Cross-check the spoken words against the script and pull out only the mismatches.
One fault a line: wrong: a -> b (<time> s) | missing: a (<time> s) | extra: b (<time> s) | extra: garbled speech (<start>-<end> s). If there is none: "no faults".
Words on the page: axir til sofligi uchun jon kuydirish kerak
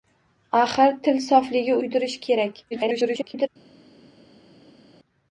missing: uchun jon (1.8 s)
extra: garbled speech (2.7-3.5 s)